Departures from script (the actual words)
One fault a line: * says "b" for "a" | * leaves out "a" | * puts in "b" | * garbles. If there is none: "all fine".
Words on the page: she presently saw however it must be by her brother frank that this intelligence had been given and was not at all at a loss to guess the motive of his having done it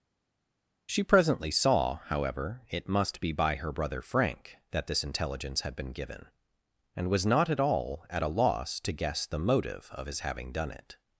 all fine